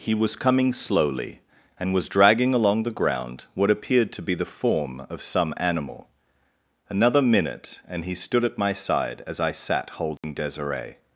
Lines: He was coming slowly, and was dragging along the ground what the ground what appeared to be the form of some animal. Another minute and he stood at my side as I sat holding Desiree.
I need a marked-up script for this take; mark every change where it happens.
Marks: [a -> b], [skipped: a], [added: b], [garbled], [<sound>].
He was coming slowly, and was dragging along the ground what [skipped: the ground what] appeared to be the form of some animal. Another minute and he stood at my side as I sat holding [dropout] Desiree.